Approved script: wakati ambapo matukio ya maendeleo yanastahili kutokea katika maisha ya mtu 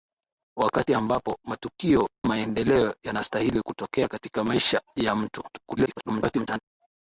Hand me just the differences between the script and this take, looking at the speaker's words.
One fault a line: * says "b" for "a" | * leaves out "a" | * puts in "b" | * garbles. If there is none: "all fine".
* leaves out "ya"
* garbles